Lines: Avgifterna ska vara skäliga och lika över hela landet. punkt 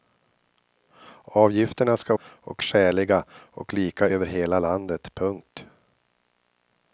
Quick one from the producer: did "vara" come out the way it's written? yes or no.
no